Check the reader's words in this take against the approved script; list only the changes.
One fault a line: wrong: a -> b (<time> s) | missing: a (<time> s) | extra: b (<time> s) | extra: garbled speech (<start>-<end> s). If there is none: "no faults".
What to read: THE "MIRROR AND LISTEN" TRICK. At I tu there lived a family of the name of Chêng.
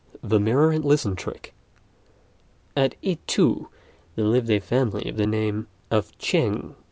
no faults